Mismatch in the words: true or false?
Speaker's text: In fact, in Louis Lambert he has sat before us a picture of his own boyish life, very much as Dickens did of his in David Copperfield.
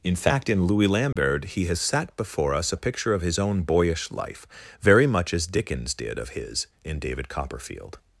false